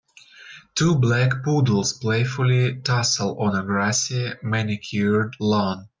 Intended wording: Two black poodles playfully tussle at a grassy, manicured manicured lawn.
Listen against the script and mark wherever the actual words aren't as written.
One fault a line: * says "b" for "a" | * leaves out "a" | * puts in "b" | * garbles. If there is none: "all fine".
* says "on" for "at"
* leaves out "manicured"